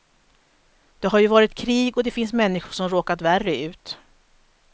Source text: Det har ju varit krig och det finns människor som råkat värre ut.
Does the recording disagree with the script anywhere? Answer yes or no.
no